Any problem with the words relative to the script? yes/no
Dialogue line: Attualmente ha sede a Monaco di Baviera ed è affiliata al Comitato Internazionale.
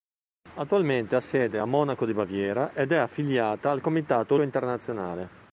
no